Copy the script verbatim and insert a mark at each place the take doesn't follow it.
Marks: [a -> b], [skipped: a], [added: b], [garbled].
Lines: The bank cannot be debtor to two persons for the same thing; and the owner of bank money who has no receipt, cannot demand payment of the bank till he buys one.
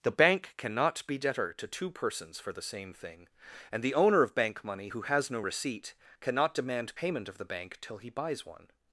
The bank cannot be debtor to two persons for the same thing; and the owner of bank money who has no receipt, cannot demand payment of the bank till he buys one.